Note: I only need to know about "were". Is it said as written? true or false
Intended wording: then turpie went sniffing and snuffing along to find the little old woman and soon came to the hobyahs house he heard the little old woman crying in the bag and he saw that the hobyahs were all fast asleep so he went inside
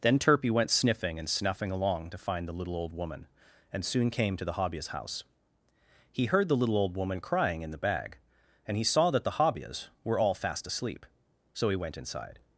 true